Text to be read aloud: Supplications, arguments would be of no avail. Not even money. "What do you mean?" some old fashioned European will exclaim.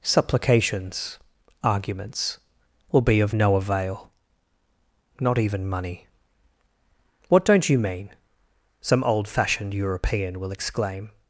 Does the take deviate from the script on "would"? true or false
true